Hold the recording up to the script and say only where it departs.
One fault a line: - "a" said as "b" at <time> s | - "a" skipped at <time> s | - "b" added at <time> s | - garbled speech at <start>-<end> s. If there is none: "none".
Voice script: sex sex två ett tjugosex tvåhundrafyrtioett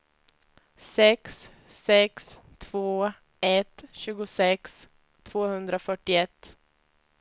none